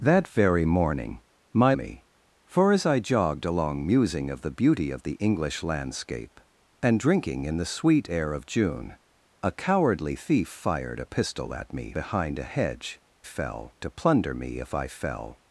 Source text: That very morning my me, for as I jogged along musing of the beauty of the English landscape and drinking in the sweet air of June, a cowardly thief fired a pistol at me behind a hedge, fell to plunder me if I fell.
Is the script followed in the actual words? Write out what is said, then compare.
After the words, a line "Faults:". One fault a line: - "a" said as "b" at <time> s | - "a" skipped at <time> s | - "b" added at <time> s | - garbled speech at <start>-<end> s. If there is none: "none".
That very morning my me, for as I jogged along musing of the beauty of the English landscape and drinking in the sweet air of June, a cowardly thief fired a pistol at me behind a hedge, fell to plunder me if I fell.
Faults:
none